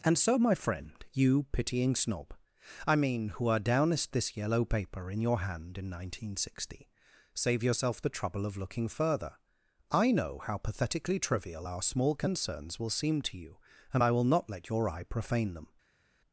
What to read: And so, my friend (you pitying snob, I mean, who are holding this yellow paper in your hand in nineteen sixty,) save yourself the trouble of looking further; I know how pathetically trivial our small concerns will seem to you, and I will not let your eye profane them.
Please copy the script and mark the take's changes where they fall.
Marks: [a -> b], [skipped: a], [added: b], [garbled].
And so, my friend (you pitying snob, I mean, who are [holding -> downest] this yellow paper in your hand in nineteen sixty,) save yourself the trouble of looking further; I know how pathetically trivial our small concerns will seem to you, and I will not let your eye profane them.